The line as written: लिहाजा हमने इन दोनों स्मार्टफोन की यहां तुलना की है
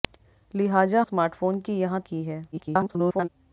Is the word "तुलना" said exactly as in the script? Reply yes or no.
no